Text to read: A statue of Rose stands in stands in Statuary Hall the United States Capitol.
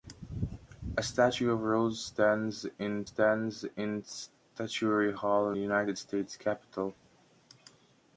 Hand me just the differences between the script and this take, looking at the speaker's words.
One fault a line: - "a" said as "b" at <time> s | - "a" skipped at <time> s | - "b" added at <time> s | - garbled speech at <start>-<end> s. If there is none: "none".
none